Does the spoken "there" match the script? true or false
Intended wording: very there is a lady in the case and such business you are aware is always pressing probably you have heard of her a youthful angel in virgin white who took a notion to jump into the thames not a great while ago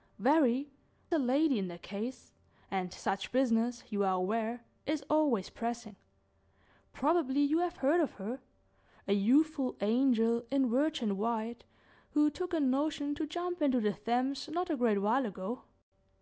false